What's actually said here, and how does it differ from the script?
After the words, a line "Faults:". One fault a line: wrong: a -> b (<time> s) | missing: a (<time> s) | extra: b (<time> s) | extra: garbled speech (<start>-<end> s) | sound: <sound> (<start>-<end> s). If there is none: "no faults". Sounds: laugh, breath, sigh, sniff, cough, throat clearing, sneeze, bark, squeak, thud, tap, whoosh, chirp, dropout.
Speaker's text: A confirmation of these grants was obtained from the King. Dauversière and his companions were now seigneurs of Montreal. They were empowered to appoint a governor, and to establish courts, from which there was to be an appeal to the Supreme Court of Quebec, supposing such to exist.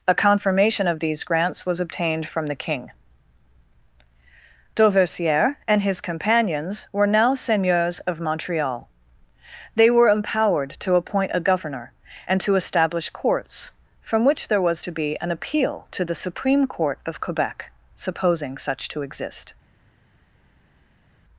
A confirmation of these grants was obtained from the King. Dauversière and his companions were now seigneurs of Montreal. They were empowered to appoint a governor, and to establish courts, from which there was to be an appeal to the Supreme Court of Quebec, supposing such to exist.
Faults:
no faults